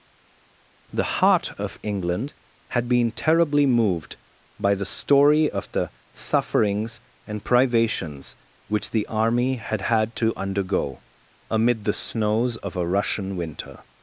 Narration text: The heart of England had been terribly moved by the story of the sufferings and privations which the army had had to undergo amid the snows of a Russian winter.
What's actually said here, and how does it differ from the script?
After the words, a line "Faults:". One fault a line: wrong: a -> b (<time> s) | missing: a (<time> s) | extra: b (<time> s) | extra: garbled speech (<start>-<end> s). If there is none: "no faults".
The heart of England had been terribly moved by the story of the sufferings and privations which the army had had to undergo amid the snows of a Russian winter.
Faults:
no faults